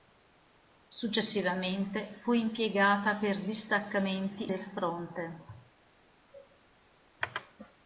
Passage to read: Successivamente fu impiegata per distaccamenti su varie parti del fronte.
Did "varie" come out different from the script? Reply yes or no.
yes